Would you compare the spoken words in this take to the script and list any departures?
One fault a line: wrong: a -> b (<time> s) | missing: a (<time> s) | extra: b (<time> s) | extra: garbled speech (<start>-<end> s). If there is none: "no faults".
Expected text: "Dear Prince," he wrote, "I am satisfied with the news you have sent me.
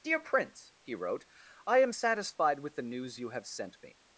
no faults